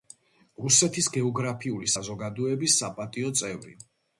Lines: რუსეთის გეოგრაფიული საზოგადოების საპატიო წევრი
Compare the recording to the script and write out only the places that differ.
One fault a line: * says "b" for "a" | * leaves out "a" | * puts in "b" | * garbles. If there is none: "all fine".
all fine